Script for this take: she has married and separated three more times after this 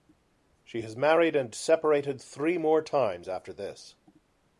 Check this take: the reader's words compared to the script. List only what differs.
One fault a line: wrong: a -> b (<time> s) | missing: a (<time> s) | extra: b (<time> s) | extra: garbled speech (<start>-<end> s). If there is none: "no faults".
no faults